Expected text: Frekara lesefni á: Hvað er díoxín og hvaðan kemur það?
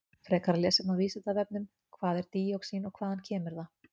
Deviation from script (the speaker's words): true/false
true